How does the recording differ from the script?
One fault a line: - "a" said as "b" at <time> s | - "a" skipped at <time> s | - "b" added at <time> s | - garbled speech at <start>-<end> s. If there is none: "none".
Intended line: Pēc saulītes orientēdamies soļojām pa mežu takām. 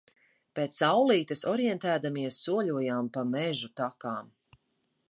none